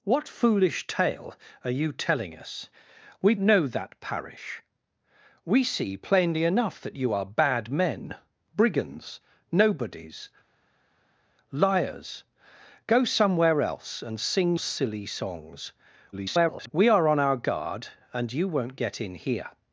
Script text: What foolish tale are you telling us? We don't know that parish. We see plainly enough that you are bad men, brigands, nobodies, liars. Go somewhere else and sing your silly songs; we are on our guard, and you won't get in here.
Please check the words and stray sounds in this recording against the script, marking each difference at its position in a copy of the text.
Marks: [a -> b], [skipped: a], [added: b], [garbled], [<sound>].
What foolish tale are you telling us? We [skipped: don't] know that parish. We see plainly enough that you are bad men, brigands, nobodies, liars. Go somewhere else and sing [skipped: your] silly songs; [garbled] we are on our guard, and you won't get in here.